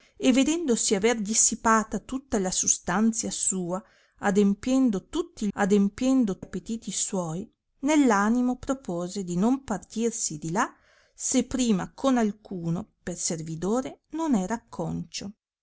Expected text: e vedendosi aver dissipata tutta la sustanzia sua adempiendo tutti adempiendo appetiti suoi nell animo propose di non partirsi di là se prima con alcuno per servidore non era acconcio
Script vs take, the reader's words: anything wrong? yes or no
no